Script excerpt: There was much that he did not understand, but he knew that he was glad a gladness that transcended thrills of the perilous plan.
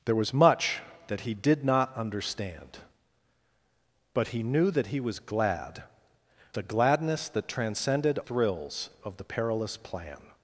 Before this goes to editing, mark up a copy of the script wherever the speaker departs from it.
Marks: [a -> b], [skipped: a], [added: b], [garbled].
There was much that he did not understand, but he knew that he was glad a gladness that transcended thrills of the perilous plan.